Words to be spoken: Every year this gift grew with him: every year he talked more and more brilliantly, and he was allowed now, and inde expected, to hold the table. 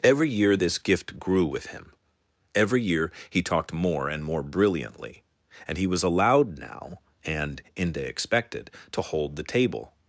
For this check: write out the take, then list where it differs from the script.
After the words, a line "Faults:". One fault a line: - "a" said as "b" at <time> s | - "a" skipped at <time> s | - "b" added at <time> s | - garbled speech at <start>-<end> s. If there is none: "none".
Every year this gift grew with him: every year he talked more and more brilliantly, and he was allowed now, and inde expected, to hold the table.
Faults:
none